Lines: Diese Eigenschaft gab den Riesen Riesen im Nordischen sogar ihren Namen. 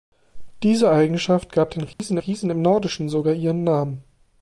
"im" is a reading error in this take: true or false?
false